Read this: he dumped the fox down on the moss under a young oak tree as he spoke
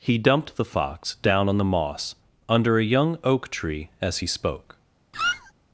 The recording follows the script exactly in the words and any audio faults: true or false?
false